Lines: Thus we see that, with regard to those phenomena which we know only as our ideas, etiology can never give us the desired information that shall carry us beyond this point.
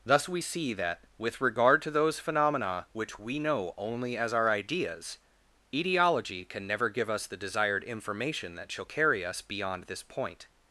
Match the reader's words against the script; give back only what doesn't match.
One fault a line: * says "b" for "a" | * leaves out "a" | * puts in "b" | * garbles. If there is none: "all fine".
all fine